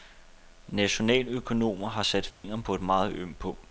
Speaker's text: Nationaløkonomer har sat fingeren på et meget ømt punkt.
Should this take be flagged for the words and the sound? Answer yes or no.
yes